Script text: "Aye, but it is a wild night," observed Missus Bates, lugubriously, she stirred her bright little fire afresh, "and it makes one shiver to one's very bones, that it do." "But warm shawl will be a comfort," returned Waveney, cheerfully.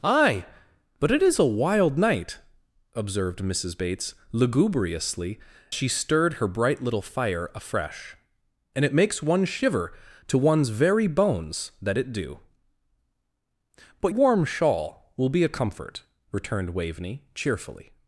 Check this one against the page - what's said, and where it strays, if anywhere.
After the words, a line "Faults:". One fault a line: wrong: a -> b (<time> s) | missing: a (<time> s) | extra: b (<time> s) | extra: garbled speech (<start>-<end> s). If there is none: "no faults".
"Aye, but it is a wild night," observed Missus Bates, lugubriously, she stirred her bright little fire afresh, "and it makes one shiver to one's very bones, that it do." "But warm shawl will be a comfort," returned Waveney, cheerfully.
Faults:
no faults